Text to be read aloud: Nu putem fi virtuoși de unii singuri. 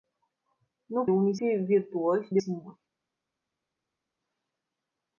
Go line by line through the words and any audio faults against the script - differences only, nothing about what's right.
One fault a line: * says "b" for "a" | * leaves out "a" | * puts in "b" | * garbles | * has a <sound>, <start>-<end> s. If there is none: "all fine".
* says "unii" for "putem"
* leaves out "unii"